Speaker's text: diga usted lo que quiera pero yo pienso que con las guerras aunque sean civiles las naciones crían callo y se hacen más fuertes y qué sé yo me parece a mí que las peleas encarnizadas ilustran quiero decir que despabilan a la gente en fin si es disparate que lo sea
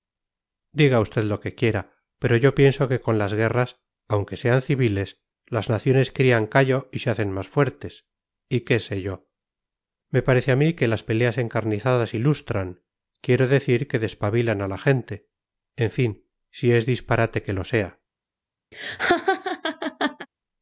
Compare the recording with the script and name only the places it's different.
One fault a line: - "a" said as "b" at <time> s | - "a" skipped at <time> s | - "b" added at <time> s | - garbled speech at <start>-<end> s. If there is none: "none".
none